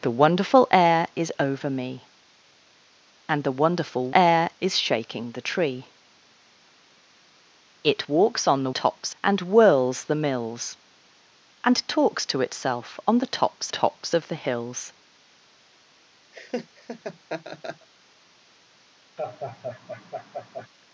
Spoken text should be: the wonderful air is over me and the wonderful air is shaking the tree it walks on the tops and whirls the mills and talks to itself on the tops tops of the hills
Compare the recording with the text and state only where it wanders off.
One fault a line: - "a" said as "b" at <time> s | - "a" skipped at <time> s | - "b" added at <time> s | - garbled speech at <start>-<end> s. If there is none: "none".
none